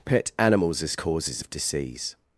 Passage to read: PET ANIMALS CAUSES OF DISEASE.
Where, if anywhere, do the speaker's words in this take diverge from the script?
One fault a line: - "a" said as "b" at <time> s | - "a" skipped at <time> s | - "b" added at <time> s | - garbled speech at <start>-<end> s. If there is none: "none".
- "AS" added at 0.8 s